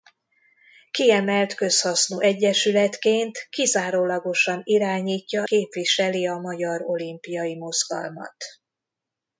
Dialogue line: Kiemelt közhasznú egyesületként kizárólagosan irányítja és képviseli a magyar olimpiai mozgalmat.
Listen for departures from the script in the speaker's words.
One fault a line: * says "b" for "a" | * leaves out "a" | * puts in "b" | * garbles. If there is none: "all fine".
* leaves out "és"